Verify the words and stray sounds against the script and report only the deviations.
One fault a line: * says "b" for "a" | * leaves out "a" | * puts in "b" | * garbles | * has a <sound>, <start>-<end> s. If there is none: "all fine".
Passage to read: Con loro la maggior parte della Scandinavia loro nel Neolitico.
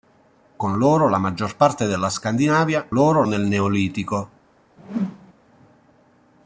* has a whoosh, 4.8-5.3 s